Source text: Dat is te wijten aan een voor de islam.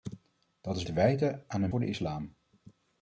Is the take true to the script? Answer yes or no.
yes